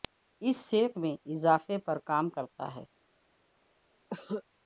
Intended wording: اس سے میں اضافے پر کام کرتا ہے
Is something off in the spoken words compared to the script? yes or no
no